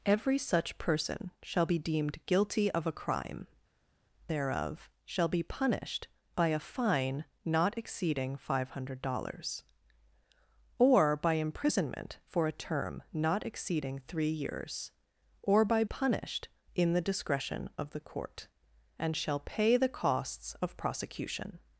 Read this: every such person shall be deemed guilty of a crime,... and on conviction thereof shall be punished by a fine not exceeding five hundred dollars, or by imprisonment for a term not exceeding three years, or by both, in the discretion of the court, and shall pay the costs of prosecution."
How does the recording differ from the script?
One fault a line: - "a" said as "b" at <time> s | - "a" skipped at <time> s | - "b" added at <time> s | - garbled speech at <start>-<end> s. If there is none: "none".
- "and on conviction" skipped at 3.5 s
- "both" said as "punished" at 15.8 s